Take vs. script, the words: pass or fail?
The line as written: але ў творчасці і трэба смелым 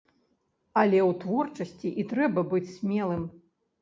fail